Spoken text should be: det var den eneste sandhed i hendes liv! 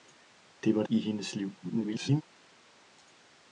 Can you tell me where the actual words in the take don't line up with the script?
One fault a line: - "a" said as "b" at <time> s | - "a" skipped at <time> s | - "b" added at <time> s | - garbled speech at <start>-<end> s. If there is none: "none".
- "den eneste sandhed" skipped at 0.8 s
- garbled speech at 1.6-2.2 s